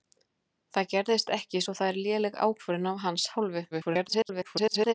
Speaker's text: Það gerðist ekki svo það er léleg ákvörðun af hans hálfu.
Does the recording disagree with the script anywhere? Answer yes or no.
yes